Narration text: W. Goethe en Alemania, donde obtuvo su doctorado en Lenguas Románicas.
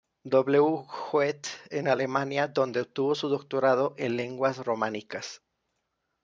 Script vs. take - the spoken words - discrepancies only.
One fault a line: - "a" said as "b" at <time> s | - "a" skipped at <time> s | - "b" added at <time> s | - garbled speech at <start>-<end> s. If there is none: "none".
none